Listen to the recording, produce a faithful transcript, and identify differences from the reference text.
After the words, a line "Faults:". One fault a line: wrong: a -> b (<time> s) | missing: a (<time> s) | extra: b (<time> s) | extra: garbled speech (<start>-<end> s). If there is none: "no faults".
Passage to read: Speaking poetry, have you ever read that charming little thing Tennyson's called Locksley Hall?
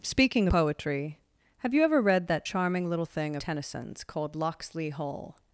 Speaking poetry, have you ever read that charming little thing Tennyson's called Locksley Hall?
Faults:
no faults